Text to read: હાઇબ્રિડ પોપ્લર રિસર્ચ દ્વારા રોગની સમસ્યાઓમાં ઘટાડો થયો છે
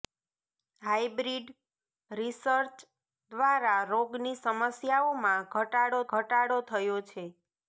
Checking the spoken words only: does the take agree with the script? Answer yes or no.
no